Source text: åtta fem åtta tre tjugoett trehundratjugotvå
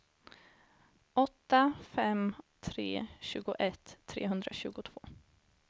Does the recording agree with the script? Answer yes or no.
no